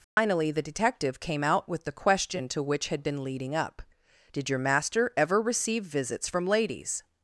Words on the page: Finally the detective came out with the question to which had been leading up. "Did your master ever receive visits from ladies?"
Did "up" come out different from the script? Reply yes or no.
no